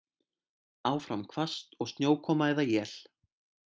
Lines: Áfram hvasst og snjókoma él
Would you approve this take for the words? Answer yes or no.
no